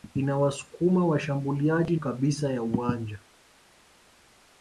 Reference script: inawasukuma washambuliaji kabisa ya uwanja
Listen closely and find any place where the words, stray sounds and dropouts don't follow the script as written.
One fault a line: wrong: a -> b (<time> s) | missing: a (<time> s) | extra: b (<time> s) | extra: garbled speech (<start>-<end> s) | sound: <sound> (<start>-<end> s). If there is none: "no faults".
no faults